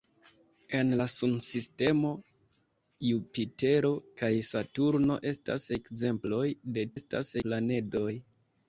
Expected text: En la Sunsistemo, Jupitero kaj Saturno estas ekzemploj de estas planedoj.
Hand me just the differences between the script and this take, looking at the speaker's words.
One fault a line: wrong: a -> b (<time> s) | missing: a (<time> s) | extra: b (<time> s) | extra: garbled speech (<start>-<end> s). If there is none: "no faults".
no faults